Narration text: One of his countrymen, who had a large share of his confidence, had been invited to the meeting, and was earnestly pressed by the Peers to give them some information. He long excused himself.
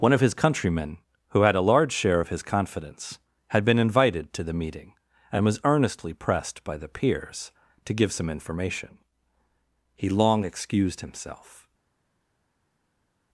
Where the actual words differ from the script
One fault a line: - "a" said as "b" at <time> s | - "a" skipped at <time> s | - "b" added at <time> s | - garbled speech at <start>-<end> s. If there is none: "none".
- "them" skipped at 8.1 s